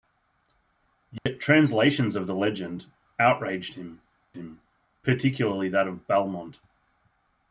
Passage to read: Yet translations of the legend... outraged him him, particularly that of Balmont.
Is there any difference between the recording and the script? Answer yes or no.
no